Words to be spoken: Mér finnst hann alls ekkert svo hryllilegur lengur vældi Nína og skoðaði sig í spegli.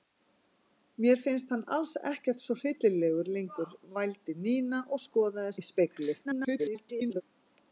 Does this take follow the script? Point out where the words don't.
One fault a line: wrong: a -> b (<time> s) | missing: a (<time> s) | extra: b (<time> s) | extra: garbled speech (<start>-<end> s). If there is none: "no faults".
missing: sig (5.5 s)
extra: garbled speech (6.2-7.2 s)